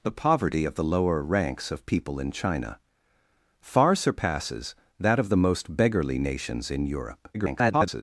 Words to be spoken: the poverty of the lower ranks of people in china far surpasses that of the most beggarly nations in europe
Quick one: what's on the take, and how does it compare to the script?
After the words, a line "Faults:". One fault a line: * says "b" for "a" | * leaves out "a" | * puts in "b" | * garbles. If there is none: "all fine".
the poverty of the lower ranks of people in china far surpasses that of the most beggarly nations in europe [garbled]
Faults:
* garbles